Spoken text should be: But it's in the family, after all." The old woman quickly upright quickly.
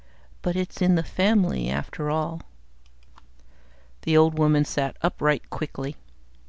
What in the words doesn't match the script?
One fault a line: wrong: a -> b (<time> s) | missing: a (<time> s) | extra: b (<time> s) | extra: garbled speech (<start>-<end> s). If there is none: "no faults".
wrong: quickly -> sat (4.6 s)